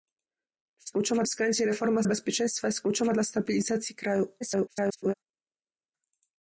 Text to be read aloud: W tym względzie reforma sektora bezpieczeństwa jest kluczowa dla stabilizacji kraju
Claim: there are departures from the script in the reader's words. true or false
true